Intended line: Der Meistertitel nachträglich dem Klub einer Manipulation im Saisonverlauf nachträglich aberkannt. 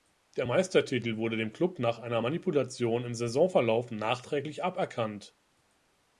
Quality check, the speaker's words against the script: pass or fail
fail